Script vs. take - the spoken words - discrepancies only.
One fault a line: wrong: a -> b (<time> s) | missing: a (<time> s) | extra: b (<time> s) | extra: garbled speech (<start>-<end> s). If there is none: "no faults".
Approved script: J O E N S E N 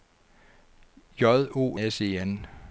missing: E N (1.8 s)